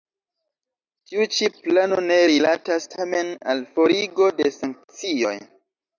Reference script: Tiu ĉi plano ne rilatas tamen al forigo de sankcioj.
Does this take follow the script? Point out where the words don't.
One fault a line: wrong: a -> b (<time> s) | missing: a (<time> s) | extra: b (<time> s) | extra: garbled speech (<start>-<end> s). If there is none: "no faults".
no faults